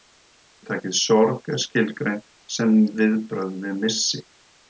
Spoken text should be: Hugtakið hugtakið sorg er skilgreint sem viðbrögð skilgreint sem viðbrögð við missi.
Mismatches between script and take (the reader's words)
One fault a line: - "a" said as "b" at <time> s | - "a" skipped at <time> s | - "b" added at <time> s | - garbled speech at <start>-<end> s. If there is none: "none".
- "hugtakið" skipped at 0.9 s
- "skilgreint sem viðbrögð" skipped at 3.6 s